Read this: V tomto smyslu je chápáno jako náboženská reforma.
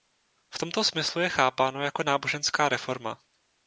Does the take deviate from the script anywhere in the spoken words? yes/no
no